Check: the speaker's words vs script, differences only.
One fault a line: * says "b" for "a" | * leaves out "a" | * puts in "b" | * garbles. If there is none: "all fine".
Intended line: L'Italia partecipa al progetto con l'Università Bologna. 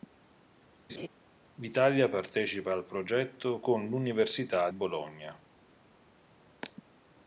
all fine